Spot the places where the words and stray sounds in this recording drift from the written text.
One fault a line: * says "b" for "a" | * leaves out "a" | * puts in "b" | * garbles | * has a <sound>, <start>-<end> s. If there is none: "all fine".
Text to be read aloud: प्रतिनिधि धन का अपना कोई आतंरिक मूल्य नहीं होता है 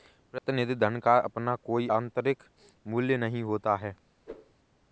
* has a dropout, 0.4-0.5 s
* has a whoosh, 4.3-4.5 s